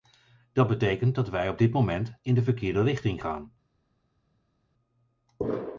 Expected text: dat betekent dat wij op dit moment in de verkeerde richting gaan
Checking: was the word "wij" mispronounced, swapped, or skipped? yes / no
no